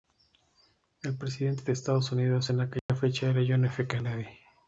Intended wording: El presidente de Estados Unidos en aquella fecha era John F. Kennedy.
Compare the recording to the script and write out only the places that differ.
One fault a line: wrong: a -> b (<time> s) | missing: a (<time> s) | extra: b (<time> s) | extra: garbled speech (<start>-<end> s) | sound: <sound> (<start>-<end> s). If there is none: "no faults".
sound: dropout (2.8-2.9 s)